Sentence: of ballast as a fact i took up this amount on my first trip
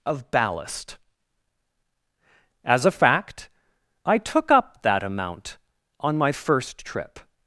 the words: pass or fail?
fail